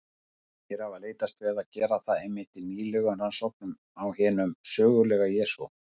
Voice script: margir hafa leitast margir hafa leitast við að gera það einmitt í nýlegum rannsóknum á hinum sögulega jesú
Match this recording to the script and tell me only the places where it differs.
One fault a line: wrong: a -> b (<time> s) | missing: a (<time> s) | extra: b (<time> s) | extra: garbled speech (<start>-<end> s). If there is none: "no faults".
missing: margir hafa leitast (1.4 s)